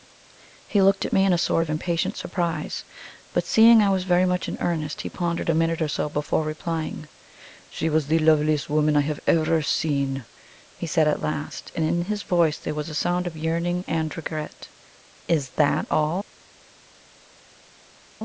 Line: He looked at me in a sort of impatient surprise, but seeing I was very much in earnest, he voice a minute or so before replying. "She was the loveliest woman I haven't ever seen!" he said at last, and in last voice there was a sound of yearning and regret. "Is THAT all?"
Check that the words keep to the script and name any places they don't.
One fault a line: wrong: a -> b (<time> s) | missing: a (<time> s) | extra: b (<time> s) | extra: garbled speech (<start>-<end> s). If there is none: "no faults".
wrong: voice -> pondered (5.1 s)
wrong: haven't -> have (9.1 s)
wrong: last -> his (12.0 s)